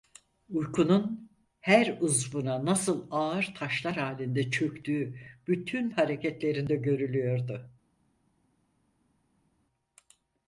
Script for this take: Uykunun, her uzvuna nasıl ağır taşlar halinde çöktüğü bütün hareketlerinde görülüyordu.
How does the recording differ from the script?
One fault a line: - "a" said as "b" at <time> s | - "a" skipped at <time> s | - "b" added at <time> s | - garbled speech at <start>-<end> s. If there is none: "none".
none